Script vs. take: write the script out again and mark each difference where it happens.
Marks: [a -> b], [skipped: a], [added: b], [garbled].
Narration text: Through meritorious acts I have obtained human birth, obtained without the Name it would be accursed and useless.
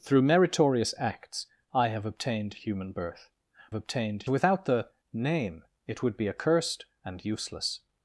Through meritorious acts I have obtained human birth, obtained without the Name it would be accursed and useless.